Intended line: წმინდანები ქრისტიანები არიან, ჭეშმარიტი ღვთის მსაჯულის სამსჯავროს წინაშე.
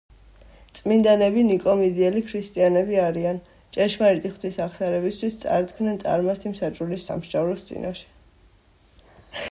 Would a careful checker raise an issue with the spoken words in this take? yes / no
yes